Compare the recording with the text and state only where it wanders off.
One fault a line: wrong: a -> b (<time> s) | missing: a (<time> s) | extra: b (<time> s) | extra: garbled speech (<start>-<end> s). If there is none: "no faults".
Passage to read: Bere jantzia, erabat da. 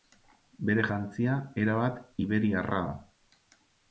extra: iberiarra (2.2 s)